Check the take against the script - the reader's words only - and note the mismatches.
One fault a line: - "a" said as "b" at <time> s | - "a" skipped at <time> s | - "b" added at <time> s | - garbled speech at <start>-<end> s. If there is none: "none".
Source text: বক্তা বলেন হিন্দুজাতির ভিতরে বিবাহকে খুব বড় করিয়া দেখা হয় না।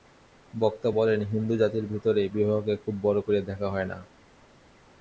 none